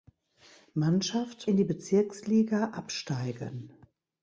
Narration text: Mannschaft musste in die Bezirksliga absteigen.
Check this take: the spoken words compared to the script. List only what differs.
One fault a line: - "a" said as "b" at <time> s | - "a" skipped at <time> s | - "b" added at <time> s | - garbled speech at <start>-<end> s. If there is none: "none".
- "musste" skipped at 1.5 s